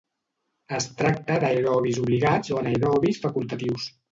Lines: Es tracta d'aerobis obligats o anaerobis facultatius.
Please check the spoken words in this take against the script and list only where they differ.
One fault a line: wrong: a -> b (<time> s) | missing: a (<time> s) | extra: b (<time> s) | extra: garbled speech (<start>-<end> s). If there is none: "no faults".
no faults